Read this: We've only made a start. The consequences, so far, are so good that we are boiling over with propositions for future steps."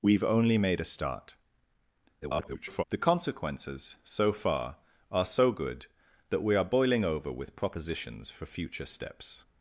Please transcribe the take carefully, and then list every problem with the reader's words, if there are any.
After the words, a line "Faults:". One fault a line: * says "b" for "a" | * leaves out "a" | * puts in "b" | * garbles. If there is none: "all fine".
We've only made a start. [garbled] The consequences, so far, are so good that we are boiling over with propositions for future steps."
Faults:
* garbles